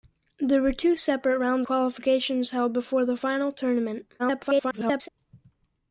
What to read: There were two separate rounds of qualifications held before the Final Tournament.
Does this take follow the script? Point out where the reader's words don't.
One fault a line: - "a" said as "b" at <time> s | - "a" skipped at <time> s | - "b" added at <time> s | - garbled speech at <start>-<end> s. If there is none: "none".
- "of" skipped at 1.7 s
- garbled speech at 4.2-5.1 s